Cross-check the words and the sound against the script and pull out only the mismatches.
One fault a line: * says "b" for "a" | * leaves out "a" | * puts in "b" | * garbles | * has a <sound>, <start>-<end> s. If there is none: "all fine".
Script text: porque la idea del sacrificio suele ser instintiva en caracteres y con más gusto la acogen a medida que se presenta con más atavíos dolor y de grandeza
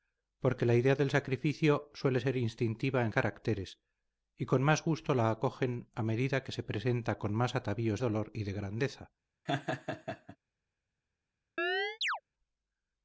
* has a laugh, 9.5-10.4 s
* has a chirp, 11.6-12.2 s